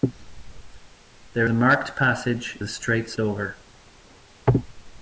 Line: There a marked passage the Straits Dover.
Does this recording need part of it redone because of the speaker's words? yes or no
no